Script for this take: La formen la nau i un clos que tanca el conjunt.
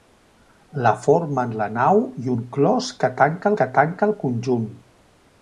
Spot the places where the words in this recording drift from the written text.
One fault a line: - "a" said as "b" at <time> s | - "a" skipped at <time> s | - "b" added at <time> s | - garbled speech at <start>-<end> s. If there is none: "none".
- "que tanca" added at 3.6 s